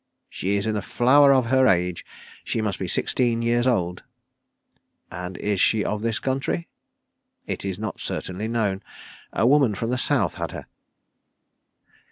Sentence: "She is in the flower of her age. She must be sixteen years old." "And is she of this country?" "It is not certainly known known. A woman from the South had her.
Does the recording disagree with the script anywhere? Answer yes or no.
yes